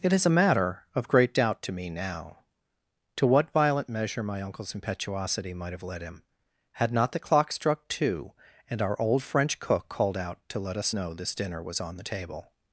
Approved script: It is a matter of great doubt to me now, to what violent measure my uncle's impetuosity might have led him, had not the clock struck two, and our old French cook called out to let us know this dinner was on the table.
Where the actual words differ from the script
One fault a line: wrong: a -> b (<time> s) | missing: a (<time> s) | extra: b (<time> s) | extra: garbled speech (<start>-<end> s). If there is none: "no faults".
no faults